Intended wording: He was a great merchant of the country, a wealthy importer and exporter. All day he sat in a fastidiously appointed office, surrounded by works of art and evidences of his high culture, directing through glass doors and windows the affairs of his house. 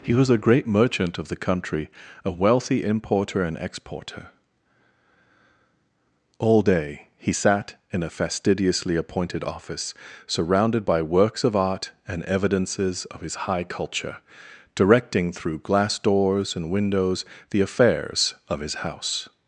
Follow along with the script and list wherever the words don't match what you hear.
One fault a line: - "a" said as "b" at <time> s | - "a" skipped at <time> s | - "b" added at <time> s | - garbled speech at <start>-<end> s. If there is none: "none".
none